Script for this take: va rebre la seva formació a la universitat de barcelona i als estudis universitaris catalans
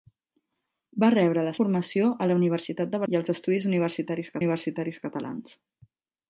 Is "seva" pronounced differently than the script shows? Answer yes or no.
yes